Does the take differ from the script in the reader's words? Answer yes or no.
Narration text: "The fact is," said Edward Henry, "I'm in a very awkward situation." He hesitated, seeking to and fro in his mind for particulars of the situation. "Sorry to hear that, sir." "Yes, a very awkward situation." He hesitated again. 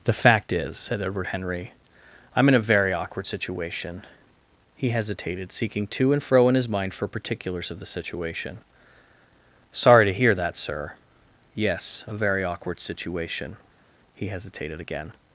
no